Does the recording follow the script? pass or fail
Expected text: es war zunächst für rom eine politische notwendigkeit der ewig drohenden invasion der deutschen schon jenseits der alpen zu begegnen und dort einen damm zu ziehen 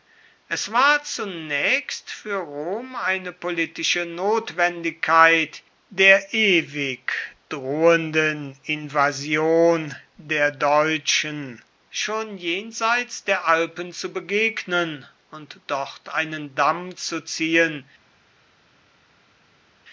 pass